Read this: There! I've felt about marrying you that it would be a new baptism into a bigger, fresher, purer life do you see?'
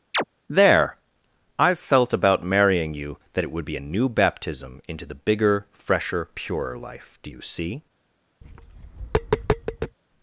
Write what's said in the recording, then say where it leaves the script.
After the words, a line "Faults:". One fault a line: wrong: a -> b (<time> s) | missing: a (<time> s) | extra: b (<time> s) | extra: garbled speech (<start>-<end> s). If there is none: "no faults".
There! I've felt about marrying you that it would be a new baptism into the bigger, fresher, purer life do you see?'
Faults:
wrong: a -> the (5.1 s)